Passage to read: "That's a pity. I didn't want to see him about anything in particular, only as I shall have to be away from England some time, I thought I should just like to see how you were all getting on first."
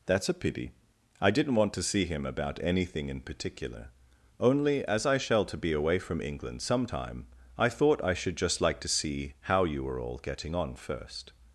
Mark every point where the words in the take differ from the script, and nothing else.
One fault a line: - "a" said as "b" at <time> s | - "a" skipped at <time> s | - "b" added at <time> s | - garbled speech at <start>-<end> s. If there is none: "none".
- "have" skipped at 5.4 s